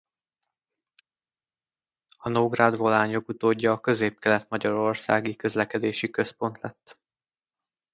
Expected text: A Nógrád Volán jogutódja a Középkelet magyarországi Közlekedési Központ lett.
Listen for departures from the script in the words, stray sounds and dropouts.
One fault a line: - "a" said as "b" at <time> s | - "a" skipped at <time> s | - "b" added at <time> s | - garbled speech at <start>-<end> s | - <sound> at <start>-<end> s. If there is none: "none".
none